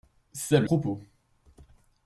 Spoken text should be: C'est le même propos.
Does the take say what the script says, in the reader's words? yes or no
no